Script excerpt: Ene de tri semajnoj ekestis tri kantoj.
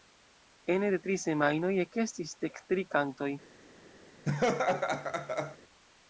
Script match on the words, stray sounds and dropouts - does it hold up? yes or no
no